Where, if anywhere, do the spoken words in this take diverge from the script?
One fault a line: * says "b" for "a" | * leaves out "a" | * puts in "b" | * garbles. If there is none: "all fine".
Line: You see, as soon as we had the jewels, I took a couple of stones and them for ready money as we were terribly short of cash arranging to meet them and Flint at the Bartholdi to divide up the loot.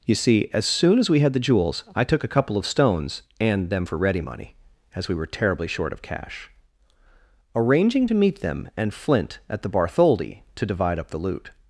all fine